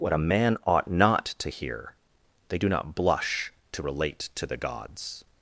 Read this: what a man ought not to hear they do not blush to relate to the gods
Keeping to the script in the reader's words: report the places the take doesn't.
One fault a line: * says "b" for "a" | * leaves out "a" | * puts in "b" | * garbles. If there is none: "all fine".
all fine